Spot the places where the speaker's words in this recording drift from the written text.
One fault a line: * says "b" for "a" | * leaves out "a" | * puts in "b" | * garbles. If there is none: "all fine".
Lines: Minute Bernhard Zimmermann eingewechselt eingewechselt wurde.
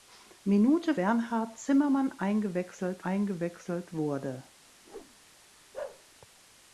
all fine